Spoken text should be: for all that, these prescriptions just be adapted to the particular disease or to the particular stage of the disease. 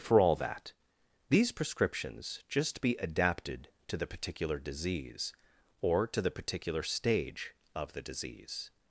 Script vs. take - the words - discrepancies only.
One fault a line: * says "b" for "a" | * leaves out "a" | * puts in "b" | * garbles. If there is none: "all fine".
all fine